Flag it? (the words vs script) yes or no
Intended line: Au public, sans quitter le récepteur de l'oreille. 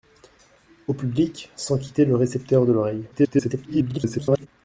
yes